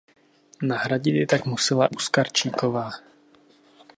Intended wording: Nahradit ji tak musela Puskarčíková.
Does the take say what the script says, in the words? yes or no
yes